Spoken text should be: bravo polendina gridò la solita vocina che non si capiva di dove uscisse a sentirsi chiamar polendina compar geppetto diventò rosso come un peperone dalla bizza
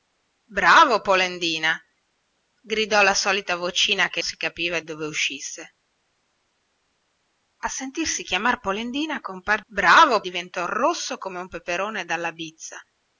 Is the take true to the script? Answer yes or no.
no